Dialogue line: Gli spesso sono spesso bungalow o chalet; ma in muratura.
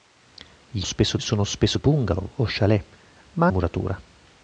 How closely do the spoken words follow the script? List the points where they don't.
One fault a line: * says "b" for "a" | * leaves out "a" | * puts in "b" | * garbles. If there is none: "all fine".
all fine